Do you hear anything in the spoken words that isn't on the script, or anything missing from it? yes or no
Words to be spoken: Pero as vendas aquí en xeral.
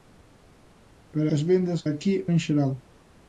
no